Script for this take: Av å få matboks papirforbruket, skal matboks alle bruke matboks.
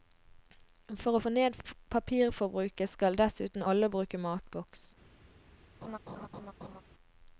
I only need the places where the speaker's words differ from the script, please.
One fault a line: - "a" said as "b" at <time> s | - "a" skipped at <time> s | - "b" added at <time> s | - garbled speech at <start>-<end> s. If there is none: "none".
- "Av" said as "For" at 1.0 s
- "matboks" said as "ned" at 1.3 s
- "matboks" said as "dessuten" at 3.2 s